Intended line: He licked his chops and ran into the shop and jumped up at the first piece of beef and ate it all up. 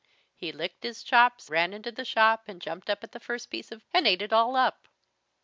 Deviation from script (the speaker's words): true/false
true